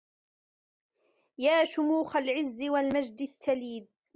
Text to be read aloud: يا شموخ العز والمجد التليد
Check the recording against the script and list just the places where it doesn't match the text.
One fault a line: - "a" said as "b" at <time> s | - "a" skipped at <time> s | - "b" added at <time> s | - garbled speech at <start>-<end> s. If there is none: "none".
none